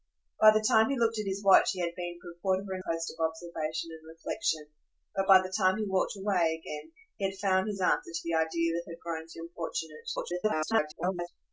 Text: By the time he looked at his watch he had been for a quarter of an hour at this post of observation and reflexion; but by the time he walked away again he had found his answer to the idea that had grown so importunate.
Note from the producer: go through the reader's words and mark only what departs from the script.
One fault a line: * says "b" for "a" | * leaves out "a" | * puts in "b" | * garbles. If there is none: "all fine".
* leaves out "hour at this"
* garbles